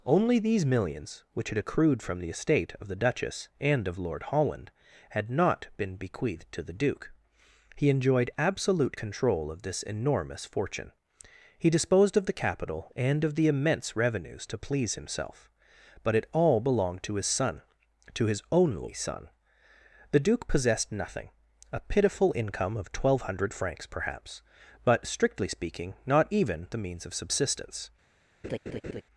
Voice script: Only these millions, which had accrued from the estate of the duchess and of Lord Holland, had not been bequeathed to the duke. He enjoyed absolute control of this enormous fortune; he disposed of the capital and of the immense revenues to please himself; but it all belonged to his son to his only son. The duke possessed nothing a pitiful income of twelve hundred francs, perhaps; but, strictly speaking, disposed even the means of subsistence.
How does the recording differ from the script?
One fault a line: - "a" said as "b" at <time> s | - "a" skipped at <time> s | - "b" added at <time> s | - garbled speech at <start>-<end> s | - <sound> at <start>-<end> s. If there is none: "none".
- "disposed" said as "not" at 26.1 s
- laugh at 28.4-29.0 s